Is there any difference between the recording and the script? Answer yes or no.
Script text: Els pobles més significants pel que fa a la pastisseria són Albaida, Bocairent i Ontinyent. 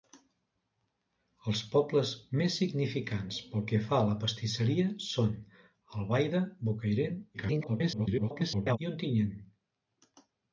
yes